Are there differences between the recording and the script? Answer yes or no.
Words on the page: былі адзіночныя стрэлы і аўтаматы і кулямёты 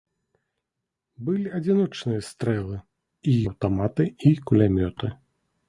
no